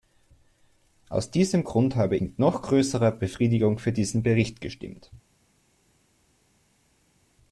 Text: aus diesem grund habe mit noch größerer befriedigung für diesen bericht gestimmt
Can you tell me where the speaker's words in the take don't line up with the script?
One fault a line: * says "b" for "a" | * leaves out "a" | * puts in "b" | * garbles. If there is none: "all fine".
all fine